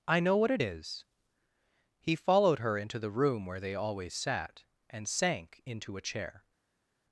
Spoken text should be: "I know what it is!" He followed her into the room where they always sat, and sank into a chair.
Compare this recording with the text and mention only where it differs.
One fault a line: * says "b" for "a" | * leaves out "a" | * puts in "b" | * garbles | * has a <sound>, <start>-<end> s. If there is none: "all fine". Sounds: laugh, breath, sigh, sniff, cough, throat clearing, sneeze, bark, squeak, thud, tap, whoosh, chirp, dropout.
all fine